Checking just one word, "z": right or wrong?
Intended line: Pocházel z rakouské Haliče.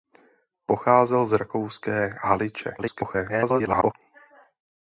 right